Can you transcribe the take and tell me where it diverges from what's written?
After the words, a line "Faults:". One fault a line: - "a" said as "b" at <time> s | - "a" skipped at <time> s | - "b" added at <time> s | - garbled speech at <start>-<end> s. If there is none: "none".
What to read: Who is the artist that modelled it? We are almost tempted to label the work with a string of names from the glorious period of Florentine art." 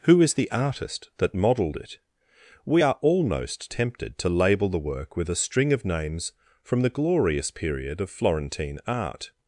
Who is the artist that modelled it? We are almost tempted to label the work with a string of names from the glorious period of Florentine art."
Faults:
none